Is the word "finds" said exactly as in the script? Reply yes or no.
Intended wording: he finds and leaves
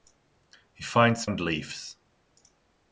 yes